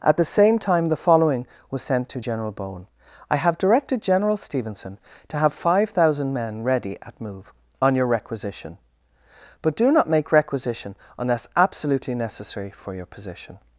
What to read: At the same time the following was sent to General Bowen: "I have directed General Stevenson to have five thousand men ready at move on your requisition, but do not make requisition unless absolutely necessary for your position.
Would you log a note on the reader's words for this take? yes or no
no